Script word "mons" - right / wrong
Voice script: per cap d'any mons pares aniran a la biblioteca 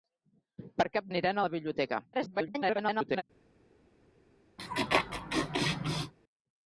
wrong